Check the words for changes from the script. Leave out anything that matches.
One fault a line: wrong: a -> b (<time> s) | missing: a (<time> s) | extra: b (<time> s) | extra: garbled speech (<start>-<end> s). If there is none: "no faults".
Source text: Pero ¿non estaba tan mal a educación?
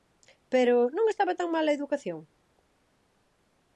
no faults